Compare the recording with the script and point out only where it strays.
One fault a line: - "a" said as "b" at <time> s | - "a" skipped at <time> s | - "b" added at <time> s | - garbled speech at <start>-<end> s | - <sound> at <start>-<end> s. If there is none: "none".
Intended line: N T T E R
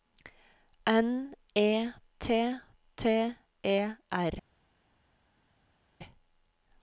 - "E" added at 1.5 s